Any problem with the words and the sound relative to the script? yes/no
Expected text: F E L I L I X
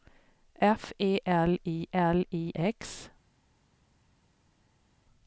no